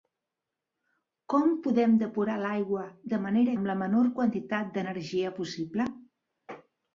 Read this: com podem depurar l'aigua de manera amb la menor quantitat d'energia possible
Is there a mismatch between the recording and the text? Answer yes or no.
no